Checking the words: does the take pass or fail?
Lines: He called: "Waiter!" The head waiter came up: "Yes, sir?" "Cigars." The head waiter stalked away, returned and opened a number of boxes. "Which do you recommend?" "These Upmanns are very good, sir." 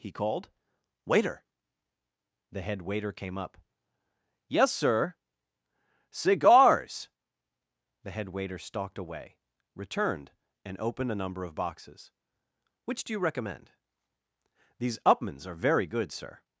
pass